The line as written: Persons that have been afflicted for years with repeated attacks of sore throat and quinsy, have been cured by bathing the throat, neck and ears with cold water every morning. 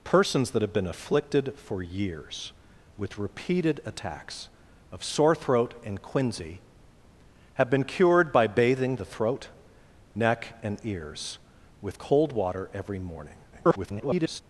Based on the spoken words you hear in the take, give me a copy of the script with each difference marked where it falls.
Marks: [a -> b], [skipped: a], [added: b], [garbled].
Persons that have been afflicted for years with repeated attacks of sore throat and quinsy, have been cured by bathing the throat, neck and ears with cold water every morning. [garbled]